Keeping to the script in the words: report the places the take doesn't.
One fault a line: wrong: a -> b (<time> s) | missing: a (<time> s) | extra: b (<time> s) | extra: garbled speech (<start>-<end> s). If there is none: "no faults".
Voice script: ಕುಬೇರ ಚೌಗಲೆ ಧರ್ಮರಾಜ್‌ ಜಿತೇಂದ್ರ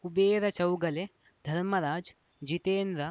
no faults